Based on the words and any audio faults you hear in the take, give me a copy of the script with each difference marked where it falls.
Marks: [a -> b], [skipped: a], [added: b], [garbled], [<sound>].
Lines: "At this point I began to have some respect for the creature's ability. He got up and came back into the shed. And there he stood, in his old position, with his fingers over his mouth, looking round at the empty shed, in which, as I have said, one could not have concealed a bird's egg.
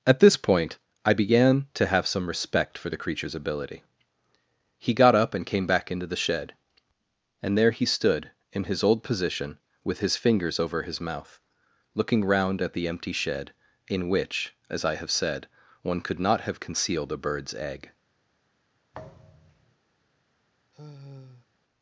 "At this point I began to have some respect for the creature's ability. He got up and came back into the shed. And there he stood, in his old position, with his fingers over his mouth, looking round at the empty shed, in which, as I have said, one could not have concealed a bird's egg. [thud] [sigh]